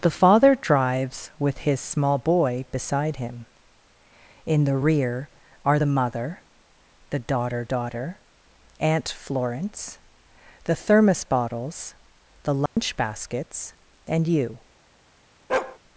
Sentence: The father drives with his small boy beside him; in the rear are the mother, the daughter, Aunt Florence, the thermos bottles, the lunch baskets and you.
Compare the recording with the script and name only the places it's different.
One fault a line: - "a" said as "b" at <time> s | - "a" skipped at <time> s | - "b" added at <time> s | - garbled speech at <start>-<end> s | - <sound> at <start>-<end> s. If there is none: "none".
- "daughter" added at 7.6 s
- dropout at 12.7-12.8 s
- bark at 15.5-15.8 s